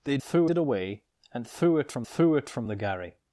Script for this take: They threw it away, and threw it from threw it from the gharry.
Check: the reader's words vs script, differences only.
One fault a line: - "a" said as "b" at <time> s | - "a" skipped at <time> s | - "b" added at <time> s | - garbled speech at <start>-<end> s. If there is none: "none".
none